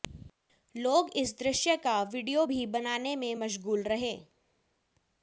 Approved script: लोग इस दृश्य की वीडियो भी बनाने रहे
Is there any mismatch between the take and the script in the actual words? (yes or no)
yes